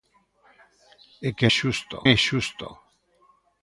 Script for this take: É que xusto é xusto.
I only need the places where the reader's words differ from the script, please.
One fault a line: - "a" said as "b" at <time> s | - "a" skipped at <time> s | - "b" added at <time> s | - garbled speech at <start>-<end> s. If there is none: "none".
none